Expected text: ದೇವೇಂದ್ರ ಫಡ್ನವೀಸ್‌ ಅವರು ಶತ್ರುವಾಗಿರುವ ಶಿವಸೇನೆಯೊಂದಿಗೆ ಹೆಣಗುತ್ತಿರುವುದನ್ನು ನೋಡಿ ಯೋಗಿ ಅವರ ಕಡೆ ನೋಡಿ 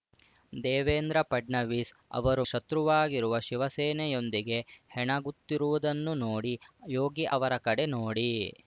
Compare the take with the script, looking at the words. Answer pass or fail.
pass